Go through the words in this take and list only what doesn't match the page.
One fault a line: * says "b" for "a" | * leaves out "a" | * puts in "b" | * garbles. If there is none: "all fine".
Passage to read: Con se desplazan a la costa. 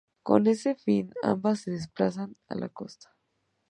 * puts in "ese fin ambas"